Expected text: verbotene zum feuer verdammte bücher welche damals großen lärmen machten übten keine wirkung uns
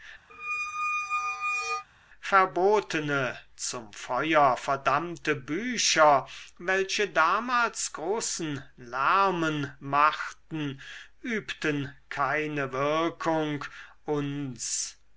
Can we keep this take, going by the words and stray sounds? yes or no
no